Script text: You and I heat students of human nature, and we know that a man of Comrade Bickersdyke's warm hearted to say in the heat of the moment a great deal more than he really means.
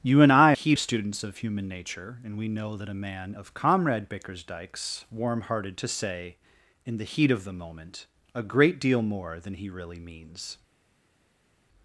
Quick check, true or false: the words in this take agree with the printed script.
true